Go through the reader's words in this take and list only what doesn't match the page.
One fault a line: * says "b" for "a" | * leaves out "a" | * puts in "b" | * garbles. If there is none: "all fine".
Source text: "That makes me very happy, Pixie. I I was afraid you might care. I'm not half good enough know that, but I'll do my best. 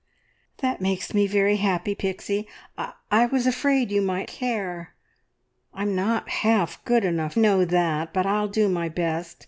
all fine